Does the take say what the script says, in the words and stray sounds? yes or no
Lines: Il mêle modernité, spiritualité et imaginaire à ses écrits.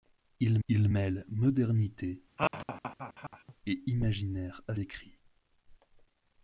no